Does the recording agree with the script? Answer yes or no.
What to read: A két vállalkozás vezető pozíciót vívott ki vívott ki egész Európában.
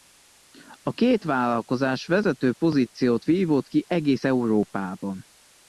no